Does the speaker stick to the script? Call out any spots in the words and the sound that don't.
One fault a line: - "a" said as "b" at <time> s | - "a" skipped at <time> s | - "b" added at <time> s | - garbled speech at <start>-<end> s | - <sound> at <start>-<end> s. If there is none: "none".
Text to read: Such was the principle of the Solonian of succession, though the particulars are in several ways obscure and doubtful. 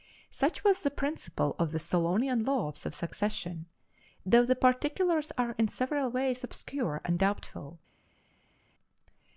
- "laws" added at 2.4 s